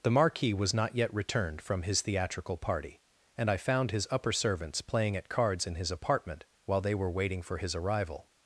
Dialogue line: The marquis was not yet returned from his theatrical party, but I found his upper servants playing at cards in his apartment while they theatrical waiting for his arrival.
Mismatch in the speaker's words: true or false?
true